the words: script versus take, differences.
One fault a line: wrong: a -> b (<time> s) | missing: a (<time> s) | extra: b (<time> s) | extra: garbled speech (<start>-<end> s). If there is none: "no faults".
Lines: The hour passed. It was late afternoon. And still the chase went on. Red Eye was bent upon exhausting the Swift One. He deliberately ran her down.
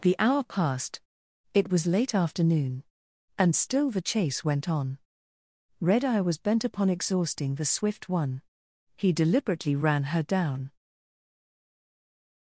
no faults